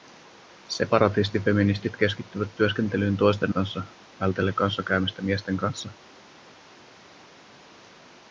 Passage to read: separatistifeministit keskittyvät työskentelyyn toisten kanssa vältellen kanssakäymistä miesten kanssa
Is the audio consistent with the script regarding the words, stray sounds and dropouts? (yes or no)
yes